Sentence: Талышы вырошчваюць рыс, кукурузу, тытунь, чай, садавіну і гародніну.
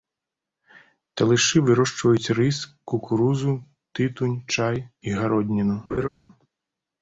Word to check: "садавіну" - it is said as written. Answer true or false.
false